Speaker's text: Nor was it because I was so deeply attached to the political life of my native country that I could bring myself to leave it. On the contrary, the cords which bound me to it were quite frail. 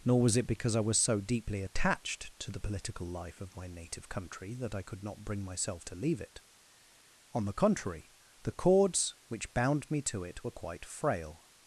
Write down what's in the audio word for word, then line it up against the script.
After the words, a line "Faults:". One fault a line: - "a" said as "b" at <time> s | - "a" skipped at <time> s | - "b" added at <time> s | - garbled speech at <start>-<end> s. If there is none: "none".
Nor was it because I was so deeply attached to the political life of my native country that I could not bring myself to leave it. On the contrary, the cords which bound me to it were quite frail.
Faults:
- "not" added at 5.0 s